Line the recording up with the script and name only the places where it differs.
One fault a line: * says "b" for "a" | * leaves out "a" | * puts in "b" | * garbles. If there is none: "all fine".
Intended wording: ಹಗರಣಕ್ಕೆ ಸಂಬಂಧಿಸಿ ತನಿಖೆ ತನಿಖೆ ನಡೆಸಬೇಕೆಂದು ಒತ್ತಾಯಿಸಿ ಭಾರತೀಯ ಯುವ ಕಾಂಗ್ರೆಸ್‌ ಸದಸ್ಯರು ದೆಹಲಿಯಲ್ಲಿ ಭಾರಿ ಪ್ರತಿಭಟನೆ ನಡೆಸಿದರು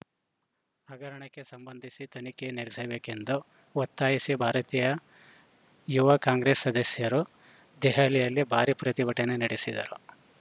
* leaves out "ತನಿಖೆ"